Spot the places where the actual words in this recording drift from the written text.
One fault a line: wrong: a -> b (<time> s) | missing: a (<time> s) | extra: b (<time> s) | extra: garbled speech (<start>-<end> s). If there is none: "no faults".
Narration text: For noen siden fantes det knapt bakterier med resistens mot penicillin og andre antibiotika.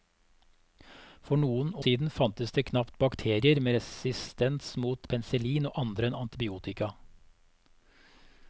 no faults